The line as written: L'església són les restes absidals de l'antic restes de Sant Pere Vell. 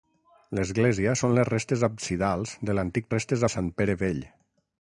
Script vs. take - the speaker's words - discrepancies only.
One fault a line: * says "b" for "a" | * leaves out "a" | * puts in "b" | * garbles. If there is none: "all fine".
all fine